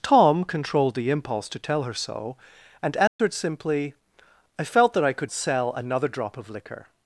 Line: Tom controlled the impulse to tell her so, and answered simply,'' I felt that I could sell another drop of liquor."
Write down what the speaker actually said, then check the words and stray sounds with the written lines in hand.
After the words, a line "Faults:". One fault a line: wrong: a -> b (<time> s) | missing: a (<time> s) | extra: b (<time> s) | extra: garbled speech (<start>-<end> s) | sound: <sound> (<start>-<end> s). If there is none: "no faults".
Tom controlled the impulse to tell her so, and answered simply,'' I felt that I could sell another drop of liquor."
Faults:
sound: dropout (3.1-3.2 s)